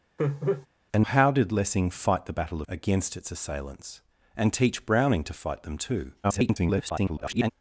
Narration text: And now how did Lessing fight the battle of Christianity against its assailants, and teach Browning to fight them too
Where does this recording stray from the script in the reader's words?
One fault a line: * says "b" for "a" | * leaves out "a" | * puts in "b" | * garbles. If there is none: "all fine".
* leaves out "now"
* leaves out "of Christianity"
* garbles